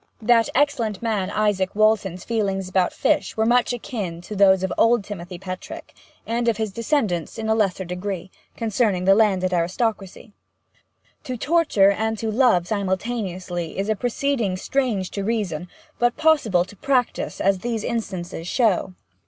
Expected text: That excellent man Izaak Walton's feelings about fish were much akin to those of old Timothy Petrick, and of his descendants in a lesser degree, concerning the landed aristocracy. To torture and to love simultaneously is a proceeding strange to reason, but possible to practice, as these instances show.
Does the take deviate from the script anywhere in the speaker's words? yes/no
no